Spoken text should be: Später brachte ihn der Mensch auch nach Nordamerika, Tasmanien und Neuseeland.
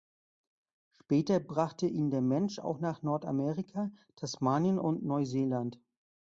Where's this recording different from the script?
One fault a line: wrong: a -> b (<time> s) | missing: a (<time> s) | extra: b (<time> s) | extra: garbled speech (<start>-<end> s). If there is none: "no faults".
no faults